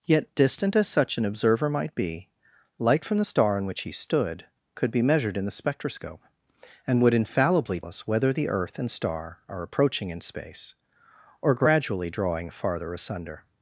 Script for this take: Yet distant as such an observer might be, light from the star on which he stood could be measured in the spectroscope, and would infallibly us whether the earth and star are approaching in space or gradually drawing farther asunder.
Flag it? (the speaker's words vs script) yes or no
no